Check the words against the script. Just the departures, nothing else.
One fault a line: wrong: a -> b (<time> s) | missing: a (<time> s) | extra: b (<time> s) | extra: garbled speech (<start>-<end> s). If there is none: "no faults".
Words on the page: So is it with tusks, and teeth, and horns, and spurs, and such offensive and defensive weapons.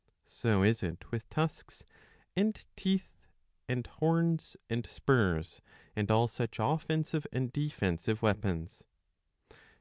extra: all (6.1 s)